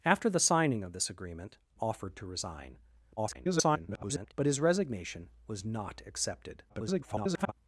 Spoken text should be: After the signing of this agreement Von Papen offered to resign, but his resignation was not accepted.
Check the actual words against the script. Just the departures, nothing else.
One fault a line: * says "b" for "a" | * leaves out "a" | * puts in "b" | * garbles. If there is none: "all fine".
* leaves out "Von Papen"
* garbles
* garbles